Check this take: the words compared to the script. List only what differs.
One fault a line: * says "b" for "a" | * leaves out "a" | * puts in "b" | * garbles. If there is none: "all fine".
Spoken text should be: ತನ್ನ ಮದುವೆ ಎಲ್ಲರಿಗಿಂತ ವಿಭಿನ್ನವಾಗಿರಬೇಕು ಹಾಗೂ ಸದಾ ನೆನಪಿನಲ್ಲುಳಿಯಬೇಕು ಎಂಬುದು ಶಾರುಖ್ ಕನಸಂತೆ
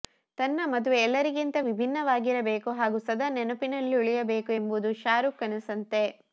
all fine